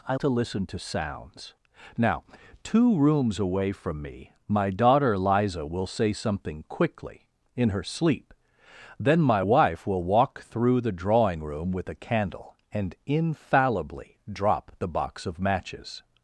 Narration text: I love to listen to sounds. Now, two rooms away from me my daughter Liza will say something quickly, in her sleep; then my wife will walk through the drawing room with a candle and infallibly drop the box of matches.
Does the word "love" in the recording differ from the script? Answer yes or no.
yes